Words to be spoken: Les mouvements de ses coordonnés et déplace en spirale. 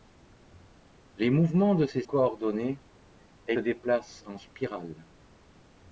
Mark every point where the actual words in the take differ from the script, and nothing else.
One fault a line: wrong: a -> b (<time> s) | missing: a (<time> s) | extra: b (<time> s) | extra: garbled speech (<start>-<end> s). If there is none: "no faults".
no faults